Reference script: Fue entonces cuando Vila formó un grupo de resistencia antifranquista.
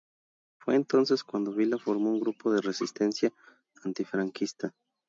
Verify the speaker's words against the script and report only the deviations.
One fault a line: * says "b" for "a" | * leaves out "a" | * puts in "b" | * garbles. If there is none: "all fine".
all fine